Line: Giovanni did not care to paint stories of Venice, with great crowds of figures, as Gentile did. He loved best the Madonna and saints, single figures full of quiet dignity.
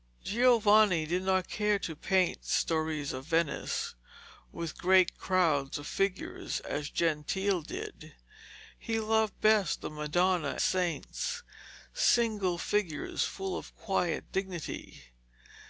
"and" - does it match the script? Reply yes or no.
no